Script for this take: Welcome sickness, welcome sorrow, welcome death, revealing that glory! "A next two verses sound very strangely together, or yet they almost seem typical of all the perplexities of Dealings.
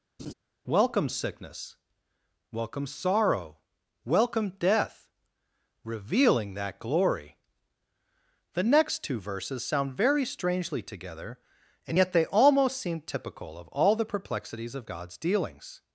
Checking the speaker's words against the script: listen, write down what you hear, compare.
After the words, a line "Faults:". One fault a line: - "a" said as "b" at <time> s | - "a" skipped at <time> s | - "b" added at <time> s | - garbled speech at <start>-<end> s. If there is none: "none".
Welcome sickness, welcome sorrow, welcome death, revealing that glory! "The next two verses sound very strangely together, and yet they almost seem typical of all the perplexities of God's dealings.
Faults:
- "A" said as "The" at 8.5 s
- "or" said as "and" at 11.9 s
- "God's" added at 14.8 s